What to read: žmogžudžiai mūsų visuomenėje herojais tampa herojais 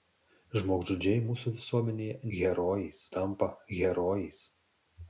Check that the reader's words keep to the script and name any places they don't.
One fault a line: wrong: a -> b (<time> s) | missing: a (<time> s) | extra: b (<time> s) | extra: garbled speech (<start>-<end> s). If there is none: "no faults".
no faults